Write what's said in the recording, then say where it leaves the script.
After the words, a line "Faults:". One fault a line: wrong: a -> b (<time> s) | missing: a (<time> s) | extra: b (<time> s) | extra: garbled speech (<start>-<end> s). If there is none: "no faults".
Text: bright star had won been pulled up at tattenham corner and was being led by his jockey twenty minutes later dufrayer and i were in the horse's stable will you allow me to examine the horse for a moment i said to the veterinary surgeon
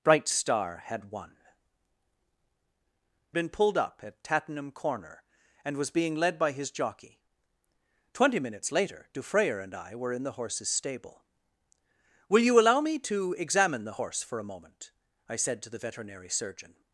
bright star had won been pulled up at tattenham corner and was being led by his jockey twenty minutes later dufrayer and i were in the horse's stable will you allow me to examine the horse for a moment i said to the veterinary surgeon
Faults:
no faults